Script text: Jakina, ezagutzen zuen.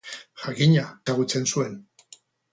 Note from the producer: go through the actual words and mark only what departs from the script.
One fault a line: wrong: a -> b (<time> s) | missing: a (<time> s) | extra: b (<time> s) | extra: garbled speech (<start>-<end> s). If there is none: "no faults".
no faults